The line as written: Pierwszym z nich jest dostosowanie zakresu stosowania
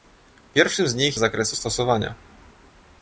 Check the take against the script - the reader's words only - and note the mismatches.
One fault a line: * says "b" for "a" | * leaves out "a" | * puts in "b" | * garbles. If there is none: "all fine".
* leaves out "jest dostosowanie"